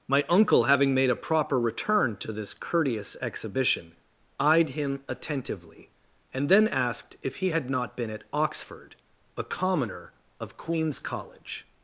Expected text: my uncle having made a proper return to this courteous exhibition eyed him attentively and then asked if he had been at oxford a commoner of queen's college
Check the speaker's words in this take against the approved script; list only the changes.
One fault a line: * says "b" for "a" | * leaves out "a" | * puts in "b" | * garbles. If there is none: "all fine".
* puts in "not"